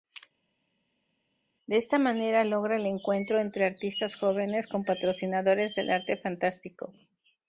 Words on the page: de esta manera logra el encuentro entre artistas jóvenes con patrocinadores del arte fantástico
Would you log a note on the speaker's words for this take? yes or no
no